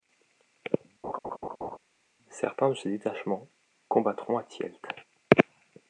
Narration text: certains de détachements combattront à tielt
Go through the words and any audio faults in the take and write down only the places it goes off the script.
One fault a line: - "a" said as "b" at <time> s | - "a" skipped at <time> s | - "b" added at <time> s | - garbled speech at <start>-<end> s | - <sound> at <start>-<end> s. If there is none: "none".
- laugh at 1.0-1.8 s
- "ces" added at 2.7 s